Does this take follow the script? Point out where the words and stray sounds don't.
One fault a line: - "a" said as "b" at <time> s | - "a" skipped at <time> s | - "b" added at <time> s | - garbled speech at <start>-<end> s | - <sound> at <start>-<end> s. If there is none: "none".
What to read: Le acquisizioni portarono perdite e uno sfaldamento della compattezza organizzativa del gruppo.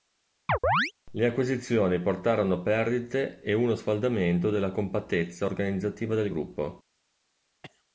- chirp at 0.5-0.9 s
- cough at 7.6-7.8 s